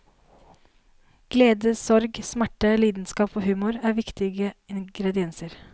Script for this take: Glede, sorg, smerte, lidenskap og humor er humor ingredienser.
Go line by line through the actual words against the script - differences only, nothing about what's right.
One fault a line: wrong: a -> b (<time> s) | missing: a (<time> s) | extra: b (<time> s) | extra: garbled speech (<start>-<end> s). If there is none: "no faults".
wrong: humor -> viktige (4.0 s)